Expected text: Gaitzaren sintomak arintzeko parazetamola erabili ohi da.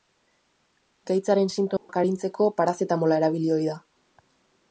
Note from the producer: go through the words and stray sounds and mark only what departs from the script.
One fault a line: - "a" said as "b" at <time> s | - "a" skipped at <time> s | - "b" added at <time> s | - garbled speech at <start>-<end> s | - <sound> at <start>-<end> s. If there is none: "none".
- dropout at 1.8-1.9 s